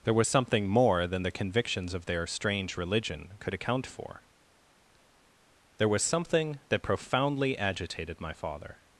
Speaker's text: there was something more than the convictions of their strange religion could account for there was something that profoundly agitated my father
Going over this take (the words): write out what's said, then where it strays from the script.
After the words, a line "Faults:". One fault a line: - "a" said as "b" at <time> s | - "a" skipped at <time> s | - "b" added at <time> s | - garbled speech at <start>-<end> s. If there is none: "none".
there was something more than the convictions of their strange religion could account for there was something that profoundly agitated my father
Faults:
none